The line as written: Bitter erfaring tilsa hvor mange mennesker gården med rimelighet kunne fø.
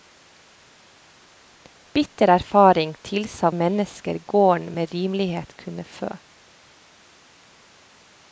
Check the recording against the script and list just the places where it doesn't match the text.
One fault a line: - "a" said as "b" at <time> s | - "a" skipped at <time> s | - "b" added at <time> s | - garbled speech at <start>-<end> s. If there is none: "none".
- "hvor mange" skipped at 3.5 s